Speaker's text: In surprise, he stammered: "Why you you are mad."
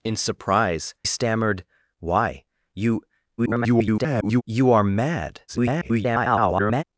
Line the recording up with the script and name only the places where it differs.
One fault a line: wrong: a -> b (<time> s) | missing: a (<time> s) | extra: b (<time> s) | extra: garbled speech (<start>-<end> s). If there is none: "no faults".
missing: he (0.9 s)
extra: garbled speech (3.4-4.4 s)
extra: garbled speech (5.5-6.8 s)